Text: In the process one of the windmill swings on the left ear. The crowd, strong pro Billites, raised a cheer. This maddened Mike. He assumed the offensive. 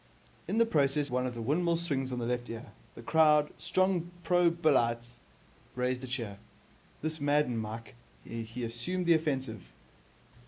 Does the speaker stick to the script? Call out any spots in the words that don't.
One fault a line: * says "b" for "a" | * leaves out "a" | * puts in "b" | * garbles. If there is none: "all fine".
all fine